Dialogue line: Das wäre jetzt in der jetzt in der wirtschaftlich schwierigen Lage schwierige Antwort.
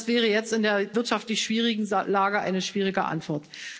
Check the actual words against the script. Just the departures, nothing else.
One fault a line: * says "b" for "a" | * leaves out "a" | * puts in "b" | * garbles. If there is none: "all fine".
* leaves out "jetzt in der"
* puts in "eine"